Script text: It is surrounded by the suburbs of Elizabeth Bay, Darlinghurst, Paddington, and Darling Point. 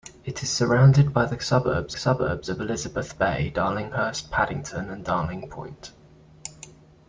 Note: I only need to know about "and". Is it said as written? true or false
true